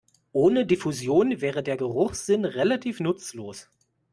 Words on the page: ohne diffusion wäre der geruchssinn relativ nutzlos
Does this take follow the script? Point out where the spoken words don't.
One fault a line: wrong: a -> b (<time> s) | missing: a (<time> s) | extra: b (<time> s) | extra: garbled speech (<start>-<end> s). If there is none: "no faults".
no faults